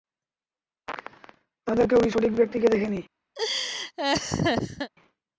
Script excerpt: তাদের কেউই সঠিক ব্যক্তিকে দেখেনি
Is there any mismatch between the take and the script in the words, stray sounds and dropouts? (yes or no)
yes